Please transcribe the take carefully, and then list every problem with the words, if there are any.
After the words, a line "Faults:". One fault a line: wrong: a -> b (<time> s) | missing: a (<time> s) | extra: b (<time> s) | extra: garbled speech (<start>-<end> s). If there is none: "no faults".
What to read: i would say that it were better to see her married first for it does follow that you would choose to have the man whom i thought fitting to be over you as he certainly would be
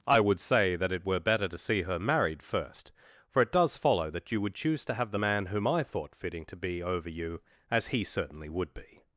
i would say that it were better to see her married first for it does follow that you would choose to have the man whom i thought fitting to be over you as he certainly would be
Faults:
no faults